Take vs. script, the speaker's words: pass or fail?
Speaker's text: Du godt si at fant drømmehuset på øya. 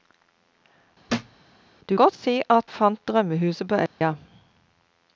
pass